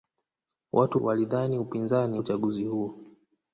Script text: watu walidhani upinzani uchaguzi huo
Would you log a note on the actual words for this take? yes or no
no